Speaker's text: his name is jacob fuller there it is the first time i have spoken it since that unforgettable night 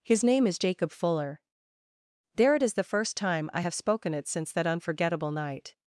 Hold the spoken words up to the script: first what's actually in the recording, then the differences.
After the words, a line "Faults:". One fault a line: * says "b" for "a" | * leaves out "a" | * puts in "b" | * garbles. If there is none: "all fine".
his name is jacob fuller there it is the first time i have spoken it since that unforgettable night
Faults:
all fine